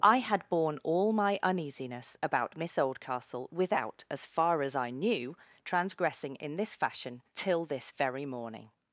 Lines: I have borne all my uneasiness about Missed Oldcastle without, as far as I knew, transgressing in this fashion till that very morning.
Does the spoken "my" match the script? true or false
true